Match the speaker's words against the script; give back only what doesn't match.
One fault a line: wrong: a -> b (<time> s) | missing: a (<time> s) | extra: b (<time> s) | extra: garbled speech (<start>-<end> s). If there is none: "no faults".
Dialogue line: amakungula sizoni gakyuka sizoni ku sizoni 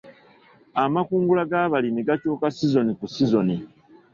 wrong: sizoni -> g'abalimi (1.5 s)